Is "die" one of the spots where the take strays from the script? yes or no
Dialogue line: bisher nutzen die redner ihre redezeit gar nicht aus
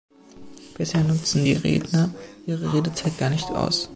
no